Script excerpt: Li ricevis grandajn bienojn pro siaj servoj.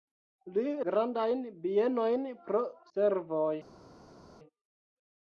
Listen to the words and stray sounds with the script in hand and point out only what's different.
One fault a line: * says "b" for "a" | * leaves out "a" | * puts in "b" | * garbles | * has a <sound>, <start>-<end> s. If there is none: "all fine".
* leaves out "ricevis"
* leaves out "siaj"